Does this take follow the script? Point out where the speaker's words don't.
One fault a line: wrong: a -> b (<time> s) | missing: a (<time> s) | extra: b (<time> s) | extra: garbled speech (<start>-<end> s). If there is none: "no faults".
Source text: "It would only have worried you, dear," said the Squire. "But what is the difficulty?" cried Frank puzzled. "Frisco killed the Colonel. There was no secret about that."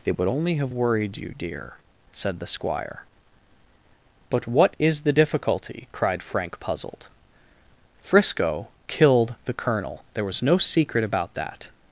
no faults